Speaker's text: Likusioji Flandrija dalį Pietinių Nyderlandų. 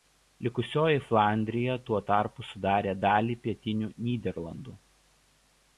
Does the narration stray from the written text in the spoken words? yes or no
yes